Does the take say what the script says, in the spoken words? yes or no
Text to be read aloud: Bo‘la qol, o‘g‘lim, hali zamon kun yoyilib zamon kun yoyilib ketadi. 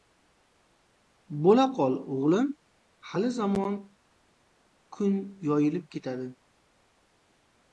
no